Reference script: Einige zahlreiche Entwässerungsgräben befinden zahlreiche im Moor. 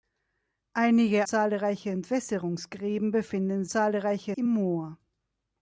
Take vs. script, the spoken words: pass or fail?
pass